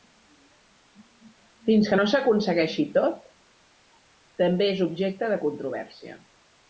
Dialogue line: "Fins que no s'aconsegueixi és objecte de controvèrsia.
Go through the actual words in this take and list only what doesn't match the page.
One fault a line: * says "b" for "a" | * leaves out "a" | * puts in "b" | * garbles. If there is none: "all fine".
* puts in "tot també"